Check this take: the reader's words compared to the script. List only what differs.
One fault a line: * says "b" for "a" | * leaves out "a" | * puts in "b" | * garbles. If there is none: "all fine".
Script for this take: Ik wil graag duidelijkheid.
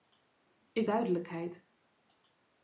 * leaves out "wil graag"